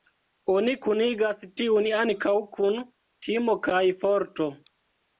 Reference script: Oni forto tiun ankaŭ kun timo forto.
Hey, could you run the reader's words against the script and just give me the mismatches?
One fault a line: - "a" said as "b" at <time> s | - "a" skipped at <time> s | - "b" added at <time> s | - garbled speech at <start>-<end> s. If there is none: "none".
- "forto" said as "kunigas" at 0.9 s
- "kaj" added at 3.7 s